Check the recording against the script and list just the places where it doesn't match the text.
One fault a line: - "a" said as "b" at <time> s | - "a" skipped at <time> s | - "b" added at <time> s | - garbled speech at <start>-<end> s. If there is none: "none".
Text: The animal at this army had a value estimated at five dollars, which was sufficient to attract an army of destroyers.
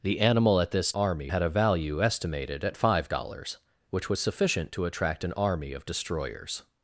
none